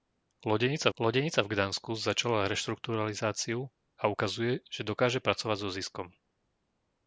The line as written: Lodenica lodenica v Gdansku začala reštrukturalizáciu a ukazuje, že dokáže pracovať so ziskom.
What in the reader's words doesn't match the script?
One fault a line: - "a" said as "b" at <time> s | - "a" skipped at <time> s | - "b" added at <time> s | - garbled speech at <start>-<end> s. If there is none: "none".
none